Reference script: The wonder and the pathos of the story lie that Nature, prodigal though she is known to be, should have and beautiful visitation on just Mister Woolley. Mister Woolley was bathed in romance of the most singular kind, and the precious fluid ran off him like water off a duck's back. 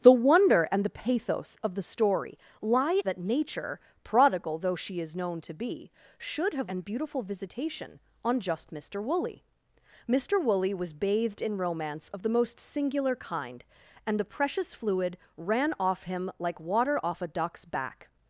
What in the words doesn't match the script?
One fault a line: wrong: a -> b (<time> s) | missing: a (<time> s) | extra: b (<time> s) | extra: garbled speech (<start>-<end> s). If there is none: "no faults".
no faults